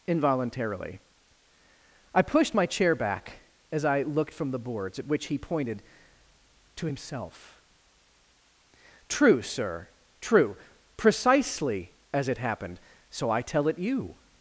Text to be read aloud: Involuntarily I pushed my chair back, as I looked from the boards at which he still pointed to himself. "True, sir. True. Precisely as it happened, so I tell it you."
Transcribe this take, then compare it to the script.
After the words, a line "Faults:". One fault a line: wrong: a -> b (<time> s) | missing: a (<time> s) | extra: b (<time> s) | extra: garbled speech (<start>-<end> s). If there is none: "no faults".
Involuntarily I pushed my chair back, as I looked from the boards at which he pointed to himself. "True, sir. True. Precisely as it happened, so I tell it you."
Faults:
missing: still (5.4 s)